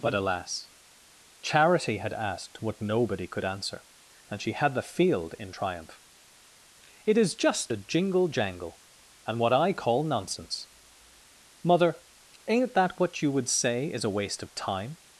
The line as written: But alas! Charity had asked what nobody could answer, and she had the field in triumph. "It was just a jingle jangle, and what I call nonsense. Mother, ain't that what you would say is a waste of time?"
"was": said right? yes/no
no